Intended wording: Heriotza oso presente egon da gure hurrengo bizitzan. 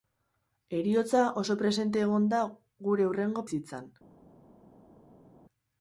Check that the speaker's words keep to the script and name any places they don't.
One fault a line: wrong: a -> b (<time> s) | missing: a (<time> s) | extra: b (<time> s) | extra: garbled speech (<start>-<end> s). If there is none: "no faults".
no faults